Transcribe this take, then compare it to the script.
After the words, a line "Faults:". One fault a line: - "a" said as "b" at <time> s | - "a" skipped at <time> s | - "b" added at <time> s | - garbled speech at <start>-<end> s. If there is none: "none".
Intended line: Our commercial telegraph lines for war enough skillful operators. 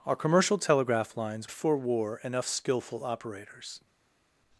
Our commercial telegraph lines for war enough skillful operators.
Faults:
none